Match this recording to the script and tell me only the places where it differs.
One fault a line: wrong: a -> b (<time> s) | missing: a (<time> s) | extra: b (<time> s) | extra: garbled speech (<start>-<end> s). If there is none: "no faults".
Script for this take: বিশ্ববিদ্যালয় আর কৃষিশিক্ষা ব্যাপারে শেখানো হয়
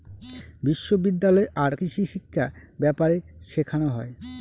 no faults